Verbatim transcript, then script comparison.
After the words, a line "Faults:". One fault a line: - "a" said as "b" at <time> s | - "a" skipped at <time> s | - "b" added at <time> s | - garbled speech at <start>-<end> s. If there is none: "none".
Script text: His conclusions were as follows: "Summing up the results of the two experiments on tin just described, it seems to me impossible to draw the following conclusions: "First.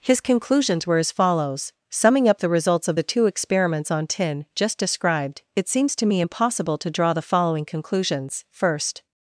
His conclusions were as follows: "Summing up the results of the two experiments on tin just described, it seems to me impossible to draw the following conclusions: "First.
Faults:
none